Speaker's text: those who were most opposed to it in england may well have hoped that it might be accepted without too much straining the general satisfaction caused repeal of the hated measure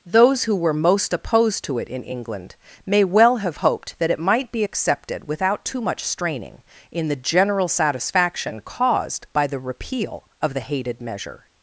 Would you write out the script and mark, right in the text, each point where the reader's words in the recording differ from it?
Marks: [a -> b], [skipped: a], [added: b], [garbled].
those who were most opposed to it in england may well have hoped that it might be accepted without too much straining [added: in] the general satisfaction caused [added: by the] repeal of the hated measure